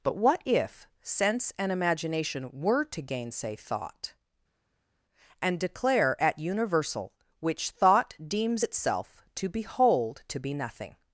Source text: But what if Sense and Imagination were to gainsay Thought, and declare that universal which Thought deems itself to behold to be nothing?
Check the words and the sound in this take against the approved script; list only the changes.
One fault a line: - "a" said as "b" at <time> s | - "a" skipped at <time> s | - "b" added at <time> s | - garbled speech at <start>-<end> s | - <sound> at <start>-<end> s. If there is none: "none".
- "that" said as "at" at 6.2 s